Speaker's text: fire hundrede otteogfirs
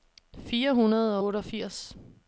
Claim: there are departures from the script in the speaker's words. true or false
false